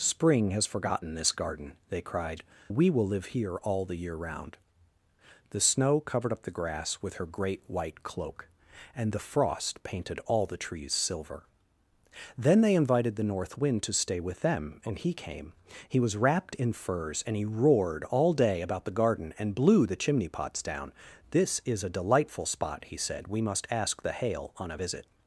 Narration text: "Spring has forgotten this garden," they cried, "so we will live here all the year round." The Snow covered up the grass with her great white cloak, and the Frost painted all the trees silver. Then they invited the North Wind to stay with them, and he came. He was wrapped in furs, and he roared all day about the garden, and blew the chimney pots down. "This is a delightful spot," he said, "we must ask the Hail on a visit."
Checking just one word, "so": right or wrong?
wrong